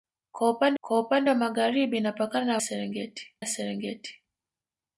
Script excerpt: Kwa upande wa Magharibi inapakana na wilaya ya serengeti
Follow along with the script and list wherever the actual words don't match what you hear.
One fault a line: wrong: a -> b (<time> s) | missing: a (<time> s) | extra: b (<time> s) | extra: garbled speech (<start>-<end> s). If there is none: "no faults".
extra: kwa upande (0.8 s)
wrong: wilaya -> serengeti (2.6 s)